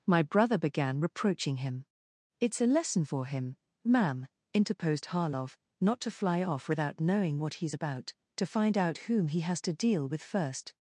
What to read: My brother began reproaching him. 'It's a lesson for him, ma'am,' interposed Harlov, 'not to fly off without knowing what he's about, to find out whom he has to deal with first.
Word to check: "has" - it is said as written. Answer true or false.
true